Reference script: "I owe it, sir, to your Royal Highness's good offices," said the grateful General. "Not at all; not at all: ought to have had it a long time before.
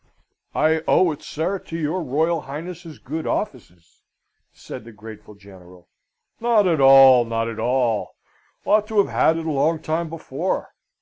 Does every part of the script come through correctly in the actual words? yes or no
yes